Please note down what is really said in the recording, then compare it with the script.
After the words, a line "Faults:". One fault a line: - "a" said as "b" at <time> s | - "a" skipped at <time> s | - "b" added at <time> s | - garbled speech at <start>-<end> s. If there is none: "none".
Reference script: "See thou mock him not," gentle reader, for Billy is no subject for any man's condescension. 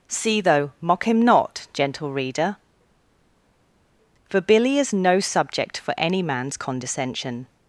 "See though mock him not," gentle reader, for Billy is no subject for any man's condescension.
Faults:
- "thou" said as "though" at 0.4 s